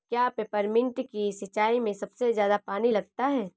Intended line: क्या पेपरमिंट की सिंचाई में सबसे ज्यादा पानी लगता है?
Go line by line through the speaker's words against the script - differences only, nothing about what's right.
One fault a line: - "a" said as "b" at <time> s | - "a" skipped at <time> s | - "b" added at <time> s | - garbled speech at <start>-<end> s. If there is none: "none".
none